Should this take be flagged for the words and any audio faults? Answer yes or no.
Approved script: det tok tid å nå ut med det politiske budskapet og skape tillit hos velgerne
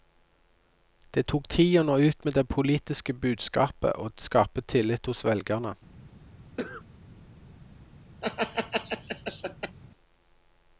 yes